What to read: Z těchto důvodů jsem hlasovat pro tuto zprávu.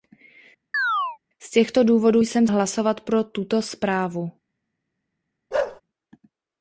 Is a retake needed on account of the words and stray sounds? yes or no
yes